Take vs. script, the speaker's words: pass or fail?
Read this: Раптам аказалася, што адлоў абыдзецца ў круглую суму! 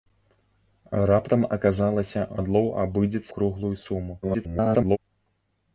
fail